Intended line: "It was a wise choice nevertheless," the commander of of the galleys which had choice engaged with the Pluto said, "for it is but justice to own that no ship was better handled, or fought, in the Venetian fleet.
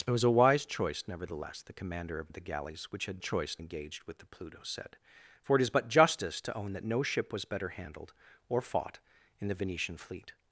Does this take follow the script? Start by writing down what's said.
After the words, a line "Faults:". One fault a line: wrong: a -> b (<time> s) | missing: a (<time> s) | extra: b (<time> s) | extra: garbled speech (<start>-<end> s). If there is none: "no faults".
"It was a wise choice nevertheless," the commander of of the galleys which had choice engaged with the Pluto said, "for it is but justice to own that no ship was better handled, or fought, in the Venetian fleet.
Faults:
no faults